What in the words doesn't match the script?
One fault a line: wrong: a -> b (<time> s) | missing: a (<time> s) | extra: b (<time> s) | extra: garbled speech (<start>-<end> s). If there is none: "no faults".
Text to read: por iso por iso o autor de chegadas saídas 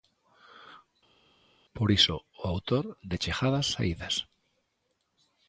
missing: por iso (2.2 s)